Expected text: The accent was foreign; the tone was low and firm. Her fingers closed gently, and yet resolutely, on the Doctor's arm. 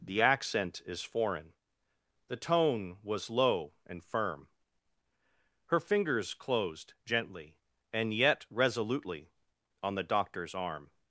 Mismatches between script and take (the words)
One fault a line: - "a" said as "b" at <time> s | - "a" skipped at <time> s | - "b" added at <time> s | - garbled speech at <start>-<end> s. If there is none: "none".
- "was" said as "is" at 0.8 s